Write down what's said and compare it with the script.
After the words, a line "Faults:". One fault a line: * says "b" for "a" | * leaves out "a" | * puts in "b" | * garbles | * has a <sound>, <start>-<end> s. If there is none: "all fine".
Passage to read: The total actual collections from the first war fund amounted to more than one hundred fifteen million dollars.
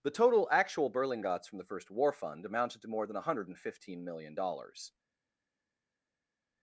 The total actual berlingots from the first war fund amounted to more than one hundred fifteen million dollars.
Faults:
* says "berlingots" for "collections"